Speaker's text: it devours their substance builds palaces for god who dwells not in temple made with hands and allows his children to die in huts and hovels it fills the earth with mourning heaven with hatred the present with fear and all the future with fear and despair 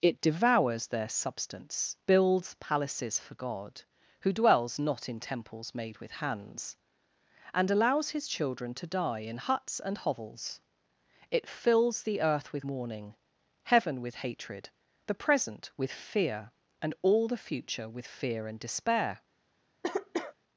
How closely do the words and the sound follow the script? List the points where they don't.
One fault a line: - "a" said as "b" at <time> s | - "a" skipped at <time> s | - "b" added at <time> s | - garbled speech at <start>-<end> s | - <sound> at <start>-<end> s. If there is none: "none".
- "temple" said as "temples" at 5.2 s
- cough at 19.8-20.3 s